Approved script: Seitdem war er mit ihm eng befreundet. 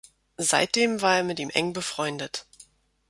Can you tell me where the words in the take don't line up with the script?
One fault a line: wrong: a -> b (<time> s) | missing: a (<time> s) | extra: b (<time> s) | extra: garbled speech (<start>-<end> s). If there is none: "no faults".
no faults